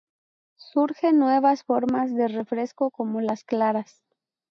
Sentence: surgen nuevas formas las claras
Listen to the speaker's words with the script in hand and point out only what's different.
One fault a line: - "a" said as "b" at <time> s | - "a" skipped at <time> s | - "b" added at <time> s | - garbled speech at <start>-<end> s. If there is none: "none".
- "de refresco como" added at 2.1 s